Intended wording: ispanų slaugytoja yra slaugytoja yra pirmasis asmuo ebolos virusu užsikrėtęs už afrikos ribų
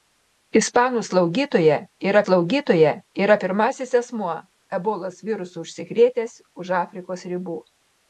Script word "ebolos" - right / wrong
right